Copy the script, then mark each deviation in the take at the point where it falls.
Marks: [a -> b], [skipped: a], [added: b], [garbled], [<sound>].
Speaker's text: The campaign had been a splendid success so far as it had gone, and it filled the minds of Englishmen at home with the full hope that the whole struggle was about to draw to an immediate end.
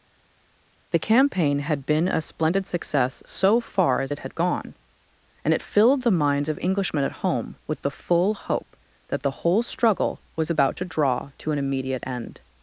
The campaign had been a splendid success so far as it had gone, and it filled the minds of Englishmen at home with the full hope that the whole struggle was about to draw to an immediate end.